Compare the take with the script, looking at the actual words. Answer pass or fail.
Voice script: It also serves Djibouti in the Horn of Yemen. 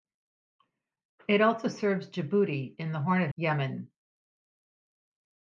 pass